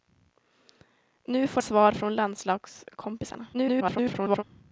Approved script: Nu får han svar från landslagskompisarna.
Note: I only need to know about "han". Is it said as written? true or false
false